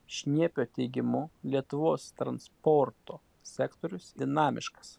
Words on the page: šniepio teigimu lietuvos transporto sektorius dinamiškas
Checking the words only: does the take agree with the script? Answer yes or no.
yes